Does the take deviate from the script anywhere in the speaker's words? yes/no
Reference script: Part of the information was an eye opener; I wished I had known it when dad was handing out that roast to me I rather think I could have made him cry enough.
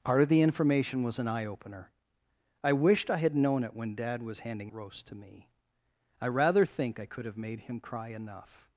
yes